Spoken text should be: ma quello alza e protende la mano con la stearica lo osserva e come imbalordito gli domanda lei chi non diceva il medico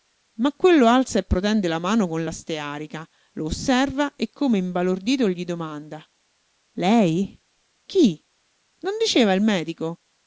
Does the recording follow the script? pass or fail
pass